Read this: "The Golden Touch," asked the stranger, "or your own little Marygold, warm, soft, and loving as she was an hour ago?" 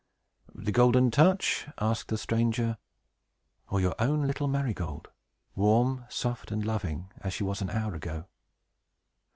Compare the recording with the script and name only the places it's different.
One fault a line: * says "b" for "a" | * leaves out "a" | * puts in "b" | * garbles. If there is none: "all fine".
all fine